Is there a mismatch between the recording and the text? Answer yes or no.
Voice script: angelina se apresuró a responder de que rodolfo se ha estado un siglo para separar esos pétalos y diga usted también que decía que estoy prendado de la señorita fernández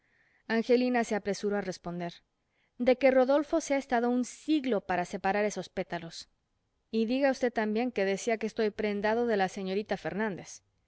no